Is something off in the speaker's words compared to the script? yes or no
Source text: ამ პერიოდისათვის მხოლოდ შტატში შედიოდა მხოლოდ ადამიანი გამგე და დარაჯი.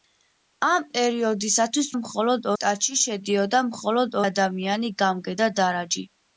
no